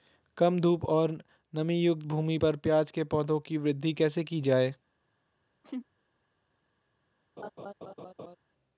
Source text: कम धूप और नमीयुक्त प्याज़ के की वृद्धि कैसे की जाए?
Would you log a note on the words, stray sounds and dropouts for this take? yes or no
yes